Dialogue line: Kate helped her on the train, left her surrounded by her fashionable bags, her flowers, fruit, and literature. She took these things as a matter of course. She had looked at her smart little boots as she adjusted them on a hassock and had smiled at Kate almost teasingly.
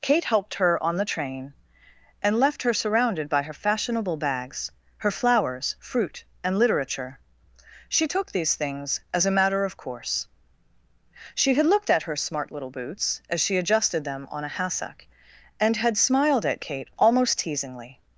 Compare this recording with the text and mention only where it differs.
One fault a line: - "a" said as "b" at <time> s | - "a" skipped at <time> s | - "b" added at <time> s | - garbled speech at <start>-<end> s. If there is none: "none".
- "and" added at 2.2 s